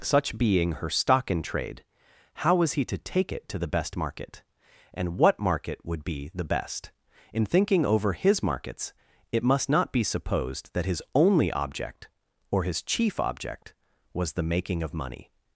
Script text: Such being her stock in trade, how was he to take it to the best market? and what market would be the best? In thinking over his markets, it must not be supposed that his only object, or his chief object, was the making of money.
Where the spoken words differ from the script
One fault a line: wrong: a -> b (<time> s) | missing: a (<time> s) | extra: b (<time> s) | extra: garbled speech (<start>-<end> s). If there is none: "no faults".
no faults